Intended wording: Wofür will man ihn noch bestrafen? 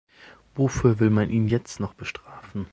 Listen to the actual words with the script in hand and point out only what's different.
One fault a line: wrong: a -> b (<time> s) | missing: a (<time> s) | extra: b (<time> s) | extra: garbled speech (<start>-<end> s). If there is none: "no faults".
extra: jetzt (1.5 s)